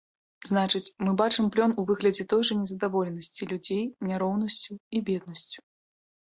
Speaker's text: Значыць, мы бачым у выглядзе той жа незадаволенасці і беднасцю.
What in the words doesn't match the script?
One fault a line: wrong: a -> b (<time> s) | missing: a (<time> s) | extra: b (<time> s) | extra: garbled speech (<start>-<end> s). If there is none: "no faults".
extra: плён (1.6 s)
extra: людзей няроўнасцю (3.6 s)